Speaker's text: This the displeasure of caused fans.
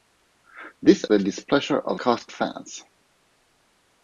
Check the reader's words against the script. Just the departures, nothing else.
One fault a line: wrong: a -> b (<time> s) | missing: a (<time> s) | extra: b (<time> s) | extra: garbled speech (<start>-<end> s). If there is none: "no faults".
no faults